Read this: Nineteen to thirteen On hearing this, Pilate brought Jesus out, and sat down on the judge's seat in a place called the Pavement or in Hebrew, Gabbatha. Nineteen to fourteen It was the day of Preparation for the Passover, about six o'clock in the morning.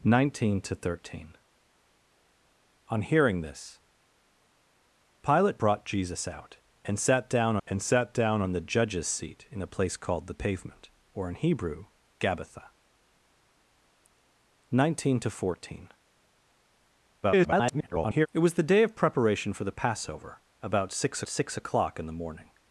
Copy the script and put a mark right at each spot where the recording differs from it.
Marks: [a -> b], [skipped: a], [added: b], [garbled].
Nineteen to thirteen On hearing this, Pilate brought Jesus out, and sat down [added: and sat down] on the judge's seat in a place called the Pavement or in Hebrew, Gabbatha. Nineteen to fourteen [garbled] It was the day of Preparation for the Passover, about six [added: six] o'clock in the morning.